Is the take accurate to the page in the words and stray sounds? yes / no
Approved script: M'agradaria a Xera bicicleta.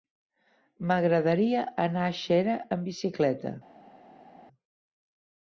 no